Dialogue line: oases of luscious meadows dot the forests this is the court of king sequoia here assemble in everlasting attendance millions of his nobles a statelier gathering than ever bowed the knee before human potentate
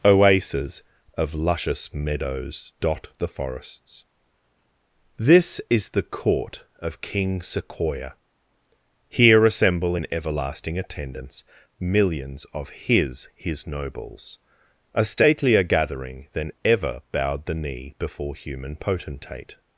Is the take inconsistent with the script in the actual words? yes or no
yes